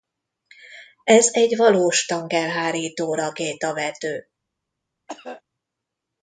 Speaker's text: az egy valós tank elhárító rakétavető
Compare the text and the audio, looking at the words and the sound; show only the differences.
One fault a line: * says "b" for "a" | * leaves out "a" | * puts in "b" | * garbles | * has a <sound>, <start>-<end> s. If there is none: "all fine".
* says "ez" for "az"
* has a cough, 5.1-5.4 s